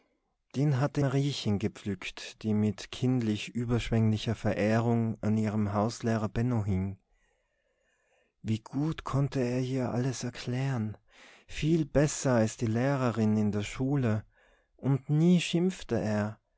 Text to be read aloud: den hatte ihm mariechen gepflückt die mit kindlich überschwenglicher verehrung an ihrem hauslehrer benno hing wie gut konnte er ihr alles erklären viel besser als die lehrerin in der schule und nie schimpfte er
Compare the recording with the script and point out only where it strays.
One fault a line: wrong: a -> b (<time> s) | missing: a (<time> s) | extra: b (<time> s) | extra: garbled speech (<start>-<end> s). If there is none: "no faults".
missing: ihm (1.0 s)